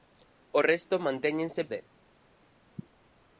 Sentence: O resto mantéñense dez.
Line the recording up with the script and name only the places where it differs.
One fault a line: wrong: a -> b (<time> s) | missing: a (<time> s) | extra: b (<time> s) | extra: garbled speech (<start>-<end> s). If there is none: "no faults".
no faults